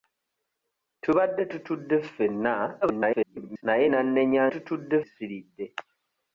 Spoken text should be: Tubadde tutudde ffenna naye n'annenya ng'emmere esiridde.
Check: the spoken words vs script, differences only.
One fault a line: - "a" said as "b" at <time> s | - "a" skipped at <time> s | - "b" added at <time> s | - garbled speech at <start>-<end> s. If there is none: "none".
- garbled speech at 2.8-3.6 s
- "ng'emmere" said as "tutudde" at 4.5 s